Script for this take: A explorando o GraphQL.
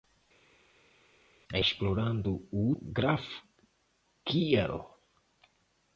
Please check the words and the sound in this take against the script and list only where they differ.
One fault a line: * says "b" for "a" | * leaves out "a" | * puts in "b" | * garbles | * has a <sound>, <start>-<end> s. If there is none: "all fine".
all fine